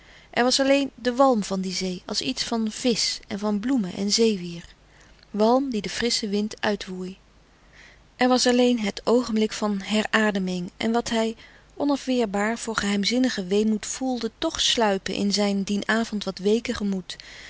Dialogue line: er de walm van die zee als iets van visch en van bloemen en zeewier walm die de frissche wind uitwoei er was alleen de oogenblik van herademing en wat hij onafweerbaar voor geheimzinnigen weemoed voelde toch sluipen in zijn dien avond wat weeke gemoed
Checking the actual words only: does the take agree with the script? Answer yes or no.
no